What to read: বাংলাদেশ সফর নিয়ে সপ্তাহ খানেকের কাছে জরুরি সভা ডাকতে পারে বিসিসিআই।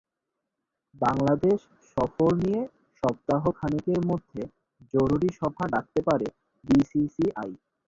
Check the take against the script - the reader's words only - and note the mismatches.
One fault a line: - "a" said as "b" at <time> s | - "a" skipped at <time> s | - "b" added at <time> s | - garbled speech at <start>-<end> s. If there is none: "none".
- "কাছে" said as "মধ্যে" at 4.1 s